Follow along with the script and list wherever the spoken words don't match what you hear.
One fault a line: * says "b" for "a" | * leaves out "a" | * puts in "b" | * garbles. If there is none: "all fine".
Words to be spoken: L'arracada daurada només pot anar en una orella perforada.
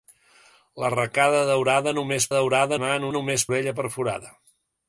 * says "daurada" for "pot"
* says "només" for "una"